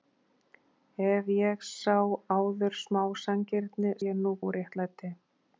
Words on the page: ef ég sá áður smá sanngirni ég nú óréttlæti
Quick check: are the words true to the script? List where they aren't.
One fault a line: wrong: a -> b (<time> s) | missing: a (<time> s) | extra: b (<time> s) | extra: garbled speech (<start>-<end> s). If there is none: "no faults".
no faults